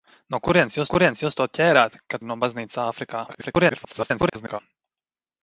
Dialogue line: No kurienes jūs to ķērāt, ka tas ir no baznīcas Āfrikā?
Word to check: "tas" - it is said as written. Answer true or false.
false